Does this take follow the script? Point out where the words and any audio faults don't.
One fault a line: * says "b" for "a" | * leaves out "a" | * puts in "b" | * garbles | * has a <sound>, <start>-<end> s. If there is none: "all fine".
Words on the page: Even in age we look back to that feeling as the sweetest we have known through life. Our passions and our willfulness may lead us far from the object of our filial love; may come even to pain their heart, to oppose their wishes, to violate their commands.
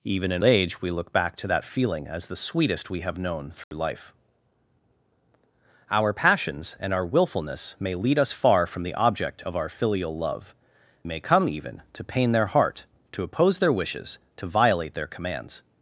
* has a dropout, 3.6-3.7 s